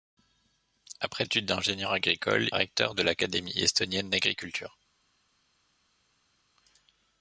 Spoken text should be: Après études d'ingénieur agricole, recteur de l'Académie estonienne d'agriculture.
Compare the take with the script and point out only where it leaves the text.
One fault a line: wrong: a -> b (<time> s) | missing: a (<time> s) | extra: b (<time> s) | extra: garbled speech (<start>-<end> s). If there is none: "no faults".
no faults